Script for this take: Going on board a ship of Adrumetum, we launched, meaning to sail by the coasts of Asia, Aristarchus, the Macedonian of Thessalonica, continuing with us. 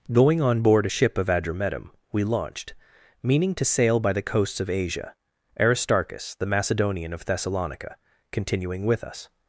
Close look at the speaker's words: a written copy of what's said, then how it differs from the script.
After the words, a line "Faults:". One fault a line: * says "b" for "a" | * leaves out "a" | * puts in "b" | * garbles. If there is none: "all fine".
Going on board a ship of Adrumetum, we launched, meaning to sail by the coasts of Asia, Aristarchus, the Macedonian of Thessalonica, continuing with us.
Faults:
all fine